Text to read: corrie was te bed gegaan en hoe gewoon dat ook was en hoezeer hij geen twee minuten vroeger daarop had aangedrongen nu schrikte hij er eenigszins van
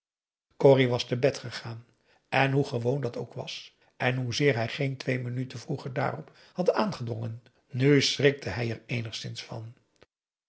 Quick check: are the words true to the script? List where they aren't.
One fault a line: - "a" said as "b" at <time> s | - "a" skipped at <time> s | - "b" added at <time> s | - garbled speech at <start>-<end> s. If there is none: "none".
none